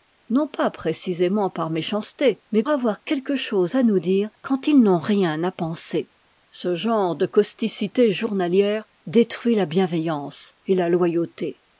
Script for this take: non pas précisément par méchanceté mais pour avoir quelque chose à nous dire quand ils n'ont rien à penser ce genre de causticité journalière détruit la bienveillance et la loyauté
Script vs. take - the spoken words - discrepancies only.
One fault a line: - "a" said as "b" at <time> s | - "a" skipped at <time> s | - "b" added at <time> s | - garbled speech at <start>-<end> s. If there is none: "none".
- "pour" skipped at 2.6 s